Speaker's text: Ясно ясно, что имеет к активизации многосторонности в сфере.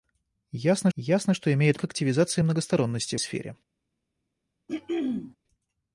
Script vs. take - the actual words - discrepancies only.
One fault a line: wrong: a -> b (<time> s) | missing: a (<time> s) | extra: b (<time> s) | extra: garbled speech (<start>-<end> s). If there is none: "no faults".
no faults